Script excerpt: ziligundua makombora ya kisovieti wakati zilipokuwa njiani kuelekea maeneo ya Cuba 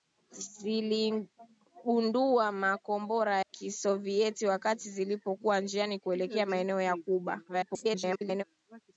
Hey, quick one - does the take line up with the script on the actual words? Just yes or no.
no